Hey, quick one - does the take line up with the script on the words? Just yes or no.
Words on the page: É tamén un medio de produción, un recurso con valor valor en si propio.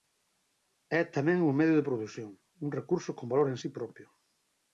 no